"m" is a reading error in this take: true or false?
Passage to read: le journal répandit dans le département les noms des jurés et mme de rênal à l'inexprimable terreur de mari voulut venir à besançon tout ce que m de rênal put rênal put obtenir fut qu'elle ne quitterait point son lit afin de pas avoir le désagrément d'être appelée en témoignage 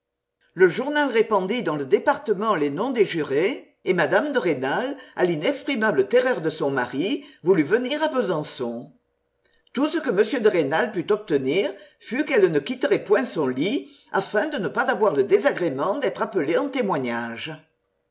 false